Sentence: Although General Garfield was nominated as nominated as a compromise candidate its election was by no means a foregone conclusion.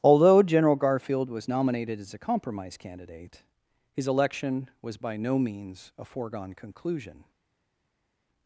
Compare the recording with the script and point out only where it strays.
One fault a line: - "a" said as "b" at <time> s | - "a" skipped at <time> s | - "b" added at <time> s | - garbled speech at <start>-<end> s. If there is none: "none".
- "nominated as" skipped at 2.1 s
- "its" said as "his" at 3.9 s